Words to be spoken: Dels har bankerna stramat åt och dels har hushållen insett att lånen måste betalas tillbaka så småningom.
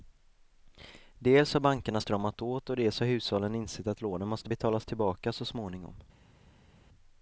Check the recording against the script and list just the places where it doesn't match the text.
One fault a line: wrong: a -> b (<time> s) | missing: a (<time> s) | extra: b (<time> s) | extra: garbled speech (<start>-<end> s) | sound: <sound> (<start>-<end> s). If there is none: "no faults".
no faults